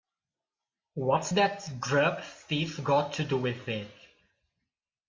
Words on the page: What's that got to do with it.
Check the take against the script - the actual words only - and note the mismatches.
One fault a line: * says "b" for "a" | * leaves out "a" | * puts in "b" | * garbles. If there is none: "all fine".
* puts in "grub thief"